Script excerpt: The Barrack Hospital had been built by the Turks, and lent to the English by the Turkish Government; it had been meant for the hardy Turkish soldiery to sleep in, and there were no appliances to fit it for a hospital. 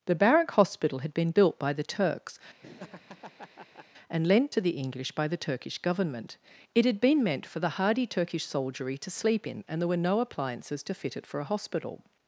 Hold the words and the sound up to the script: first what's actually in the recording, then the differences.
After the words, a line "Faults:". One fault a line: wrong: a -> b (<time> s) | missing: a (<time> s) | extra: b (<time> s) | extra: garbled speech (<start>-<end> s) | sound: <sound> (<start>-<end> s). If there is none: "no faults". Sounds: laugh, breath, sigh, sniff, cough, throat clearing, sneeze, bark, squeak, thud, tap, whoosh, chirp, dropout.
The Barrack Hospital had been built by the Turks, and lent to the English by the Turkish Government; it had been meant for the hardy Turkish soldiery to sleep in, and there were no appliances to fit it for a hospital.
Faults:
sound: laugh (2.6-3.9 s)